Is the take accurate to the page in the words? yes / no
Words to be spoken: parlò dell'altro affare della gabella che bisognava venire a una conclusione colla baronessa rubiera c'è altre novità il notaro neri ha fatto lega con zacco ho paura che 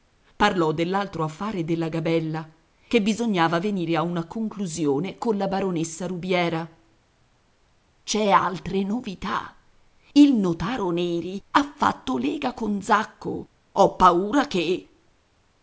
yes